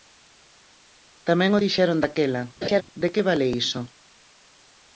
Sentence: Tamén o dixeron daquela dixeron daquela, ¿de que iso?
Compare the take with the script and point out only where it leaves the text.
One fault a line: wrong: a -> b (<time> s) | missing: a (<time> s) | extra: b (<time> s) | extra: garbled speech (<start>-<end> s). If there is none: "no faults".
missing: dixeron daquela (2.4 s)
extra: vale (3.3 s)